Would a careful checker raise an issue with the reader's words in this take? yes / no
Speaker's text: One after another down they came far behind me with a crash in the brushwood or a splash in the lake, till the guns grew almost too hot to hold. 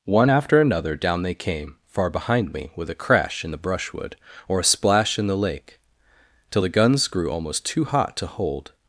no